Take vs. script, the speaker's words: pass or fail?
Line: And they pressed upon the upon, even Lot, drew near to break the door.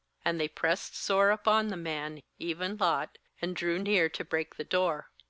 fail